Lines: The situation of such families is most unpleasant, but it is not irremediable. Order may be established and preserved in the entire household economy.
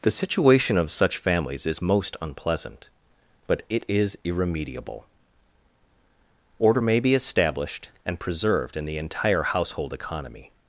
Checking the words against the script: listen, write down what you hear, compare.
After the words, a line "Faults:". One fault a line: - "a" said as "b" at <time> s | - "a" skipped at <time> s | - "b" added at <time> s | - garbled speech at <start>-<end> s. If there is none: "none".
The situation of such families is most unpleasant, but it is irremediable. Order may be established and preserved in the entire household economy.
Faults:
- "not" skipped at 4.2 s